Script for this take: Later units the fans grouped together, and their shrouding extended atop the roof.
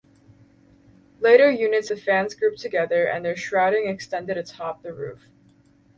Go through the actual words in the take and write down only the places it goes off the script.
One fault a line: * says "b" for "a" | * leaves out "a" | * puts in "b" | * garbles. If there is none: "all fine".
all fine